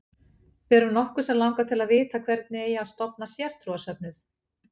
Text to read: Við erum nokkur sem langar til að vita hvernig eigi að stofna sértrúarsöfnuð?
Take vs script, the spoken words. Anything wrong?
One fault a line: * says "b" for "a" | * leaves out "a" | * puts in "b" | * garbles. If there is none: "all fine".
all fine